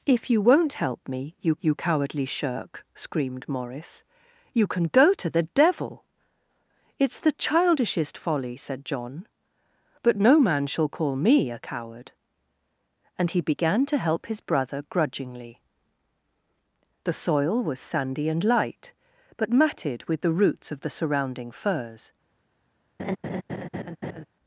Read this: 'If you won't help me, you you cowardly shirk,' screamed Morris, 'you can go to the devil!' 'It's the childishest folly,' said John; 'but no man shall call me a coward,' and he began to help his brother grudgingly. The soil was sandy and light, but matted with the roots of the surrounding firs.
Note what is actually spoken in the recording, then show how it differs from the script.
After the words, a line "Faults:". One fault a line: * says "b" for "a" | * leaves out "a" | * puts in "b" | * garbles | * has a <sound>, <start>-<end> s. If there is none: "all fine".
'If you won't help me, you you cowardly shirk,' screamed Morris, 'you can go to the devil!' 'It's the childishest folly,' said John; 'but no man shall call me a coward,' and he began to help his brother grudgingly. The soil was sandy and light, but matted with the roots of the surrounding firs.
Faults:
* has a laugh, 23.0-24.3 s